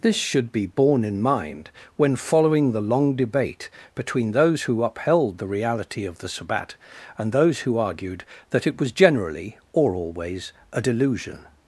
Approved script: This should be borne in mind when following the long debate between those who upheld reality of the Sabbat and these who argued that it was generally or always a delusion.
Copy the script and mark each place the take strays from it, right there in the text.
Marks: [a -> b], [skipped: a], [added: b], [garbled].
This should be borne in mind when following the long debate between those who upheld [added: the] reality of the Sabbat and [these -> those] who argued that it was generally or always a delusion.